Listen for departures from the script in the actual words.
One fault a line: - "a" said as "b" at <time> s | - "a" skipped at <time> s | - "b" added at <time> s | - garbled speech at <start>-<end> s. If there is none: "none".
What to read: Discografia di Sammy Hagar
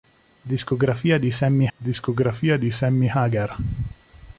- "discografia di Sammy" added at 1.8 s